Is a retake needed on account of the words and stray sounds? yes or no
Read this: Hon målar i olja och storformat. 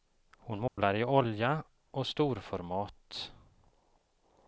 yes